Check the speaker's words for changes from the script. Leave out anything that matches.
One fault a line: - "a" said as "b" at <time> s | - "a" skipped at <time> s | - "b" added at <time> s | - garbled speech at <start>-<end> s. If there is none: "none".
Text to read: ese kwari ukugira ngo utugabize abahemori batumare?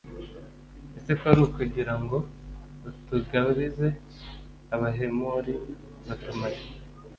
none